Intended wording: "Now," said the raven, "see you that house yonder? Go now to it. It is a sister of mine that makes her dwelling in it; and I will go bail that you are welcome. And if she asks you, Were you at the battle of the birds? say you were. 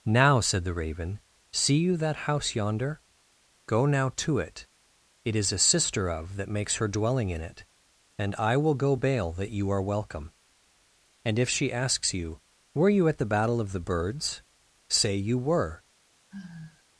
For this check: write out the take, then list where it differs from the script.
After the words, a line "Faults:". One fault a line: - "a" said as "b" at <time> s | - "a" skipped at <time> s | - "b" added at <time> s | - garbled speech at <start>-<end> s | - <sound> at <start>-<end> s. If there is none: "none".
"Now," said the raven, "see you that house yonder? Go now to it. It is a sister of that makes her dwelling in it; and I will go bail that you are welcome. And if she asks you, Were you at the battle of the birds? say you were.
Faults:
- "mine" skipped at 6.4 s
- sigh at 16.3-16.8 s